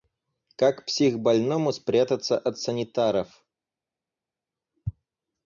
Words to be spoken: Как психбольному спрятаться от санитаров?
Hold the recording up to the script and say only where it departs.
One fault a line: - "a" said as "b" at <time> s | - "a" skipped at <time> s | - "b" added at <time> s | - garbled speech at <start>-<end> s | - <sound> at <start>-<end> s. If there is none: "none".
none